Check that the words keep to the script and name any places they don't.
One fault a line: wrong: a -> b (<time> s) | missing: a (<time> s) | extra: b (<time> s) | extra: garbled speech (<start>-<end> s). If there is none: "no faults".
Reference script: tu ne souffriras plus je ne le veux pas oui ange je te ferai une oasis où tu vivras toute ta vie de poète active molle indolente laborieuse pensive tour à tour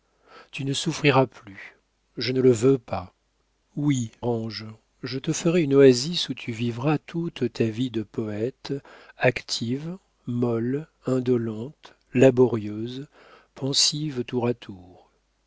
no faults